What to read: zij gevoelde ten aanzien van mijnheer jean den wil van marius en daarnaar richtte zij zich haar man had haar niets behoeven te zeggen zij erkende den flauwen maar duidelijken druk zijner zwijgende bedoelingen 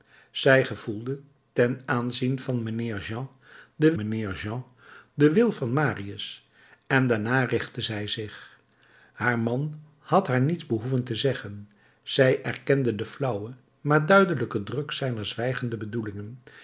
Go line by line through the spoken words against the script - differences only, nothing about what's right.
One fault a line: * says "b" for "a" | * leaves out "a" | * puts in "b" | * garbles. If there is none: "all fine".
* puts in "mijnheer jean den"